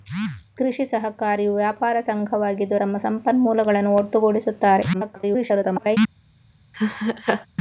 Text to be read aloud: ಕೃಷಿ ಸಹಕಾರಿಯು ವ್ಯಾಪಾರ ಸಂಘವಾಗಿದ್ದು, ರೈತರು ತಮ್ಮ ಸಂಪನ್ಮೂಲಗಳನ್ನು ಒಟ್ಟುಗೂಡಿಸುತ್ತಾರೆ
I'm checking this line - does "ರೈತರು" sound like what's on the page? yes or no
no